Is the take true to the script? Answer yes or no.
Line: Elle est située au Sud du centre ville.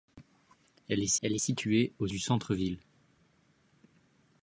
no